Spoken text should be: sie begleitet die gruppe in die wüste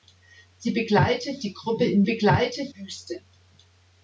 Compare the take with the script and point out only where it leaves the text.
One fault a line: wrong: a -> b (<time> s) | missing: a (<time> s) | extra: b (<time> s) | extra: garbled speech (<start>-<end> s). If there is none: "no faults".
wrong: die -> begleitet (2.0 s)